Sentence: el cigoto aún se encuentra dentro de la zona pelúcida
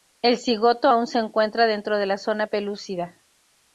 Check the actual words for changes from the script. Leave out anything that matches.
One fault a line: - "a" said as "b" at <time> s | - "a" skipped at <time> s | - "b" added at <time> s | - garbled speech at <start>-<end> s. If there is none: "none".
none